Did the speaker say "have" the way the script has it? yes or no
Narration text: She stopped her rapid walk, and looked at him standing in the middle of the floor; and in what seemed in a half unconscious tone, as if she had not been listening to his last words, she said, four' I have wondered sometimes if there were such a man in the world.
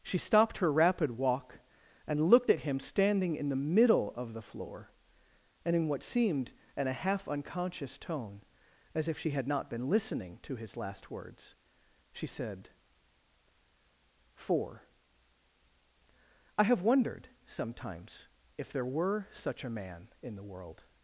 yes